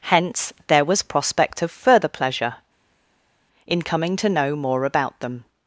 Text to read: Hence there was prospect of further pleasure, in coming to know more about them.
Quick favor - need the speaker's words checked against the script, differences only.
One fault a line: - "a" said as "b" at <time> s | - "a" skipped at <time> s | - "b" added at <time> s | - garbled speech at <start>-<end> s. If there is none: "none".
none